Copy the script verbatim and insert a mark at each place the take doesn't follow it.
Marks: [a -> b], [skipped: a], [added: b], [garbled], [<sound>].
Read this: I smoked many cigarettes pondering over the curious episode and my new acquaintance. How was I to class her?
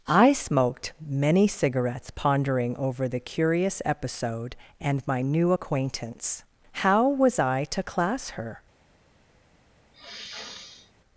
I smoked many cigarettes pondering over the curious episode and my new acquaintance. How was I to class her? [sniff]